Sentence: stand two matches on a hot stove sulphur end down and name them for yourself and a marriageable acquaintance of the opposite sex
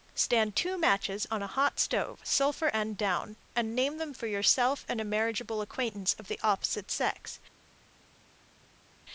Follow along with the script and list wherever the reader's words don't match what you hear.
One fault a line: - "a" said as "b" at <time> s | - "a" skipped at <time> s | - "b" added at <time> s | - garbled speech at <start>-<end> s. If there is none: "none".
none